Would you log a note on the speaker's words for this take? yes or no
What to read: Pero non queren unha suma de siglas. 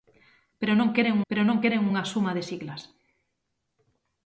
yes